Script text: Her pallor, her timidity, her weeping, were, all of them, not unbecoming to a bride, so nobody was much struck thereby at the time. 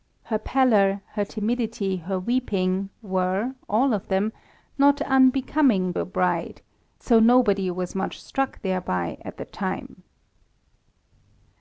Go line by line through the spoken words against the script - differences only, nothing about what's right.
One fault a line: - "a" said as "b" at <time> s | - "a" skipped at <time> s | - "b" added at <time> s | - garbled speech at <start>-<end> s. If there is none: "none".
- "to" skipped at 5.9 s